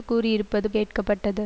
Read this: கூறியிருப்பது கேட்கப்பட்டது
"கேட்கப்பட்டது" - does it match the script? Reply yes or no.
yes